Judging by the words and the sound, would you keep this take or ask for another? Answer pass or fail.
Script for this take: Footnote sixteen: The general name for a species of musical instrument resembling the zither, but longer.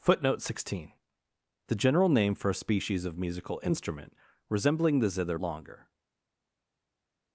fail